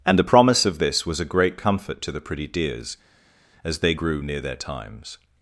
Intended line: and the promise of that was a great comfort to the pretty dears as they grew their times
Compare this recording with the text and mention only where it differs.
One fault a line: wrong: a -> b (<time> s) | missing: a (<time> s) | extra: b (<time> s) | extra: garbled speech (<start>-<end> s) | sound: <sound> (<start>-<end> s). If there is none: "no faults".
wrong: that -> this (0.8 s)
extra: near (4.2 s)